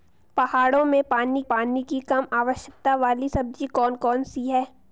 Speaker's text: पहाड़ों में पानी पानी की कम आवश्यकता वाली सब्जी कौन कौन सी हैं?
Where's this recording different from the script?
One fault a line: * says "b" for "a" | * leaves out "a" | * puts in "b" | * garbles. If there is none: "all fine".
all fine